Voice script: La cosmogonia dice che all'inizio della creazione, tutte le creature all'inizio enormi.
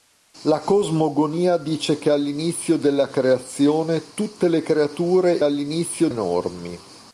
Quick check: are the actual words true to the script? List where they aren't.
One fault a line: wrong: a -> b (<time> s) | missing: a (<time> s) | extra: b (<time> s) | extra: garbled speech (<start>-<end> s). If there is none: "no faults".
no faults